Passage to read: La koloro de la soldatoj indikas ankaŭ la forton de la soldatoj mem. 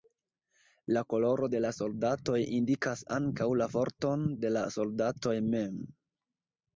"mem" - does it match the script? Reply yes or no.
yes